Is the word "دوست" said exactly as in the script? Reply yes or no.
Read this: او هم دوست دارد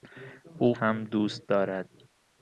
yes